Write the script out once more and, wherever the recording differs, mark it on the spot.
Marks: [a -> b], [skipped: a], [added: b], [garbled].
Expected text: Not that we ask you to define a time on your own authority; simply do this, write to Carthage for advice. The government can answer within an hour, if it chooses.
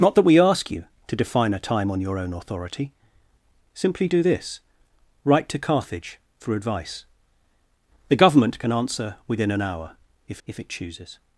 Not that we ask you to define a time on your own authority; simply do this, write to Carthage for advice. The government can answer within an hour, if [added: if] it chooses.